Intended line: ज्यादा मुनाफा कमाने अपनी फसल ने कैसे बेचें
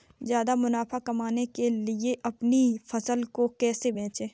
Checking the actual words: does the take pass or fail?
fail